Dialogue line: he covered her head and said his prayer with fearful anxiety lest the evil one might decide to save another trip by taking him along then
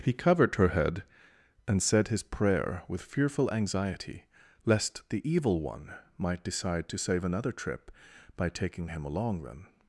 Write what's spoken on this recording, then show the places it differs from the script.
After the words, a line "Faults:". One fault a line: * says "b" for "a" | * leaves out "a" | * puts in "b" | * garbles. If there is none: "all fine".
he covered her head and said his prayer with fearful anxiety lest the evil one might decide to save another trip by taking him along then
Faults:
all fine